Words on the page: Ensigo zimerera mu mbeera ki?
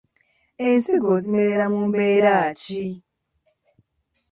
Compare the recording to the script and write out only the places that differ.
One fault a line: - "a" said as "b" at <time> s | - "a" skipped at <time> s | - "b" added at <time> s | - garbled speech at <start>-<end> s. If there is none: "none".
none